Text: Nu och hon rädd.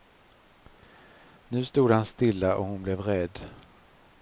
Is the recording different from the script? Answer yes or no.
yes